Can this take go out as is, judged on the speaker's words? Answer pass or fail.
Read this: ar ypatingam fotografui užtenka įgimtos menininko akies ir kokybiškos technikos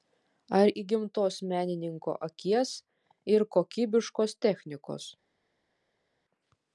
fail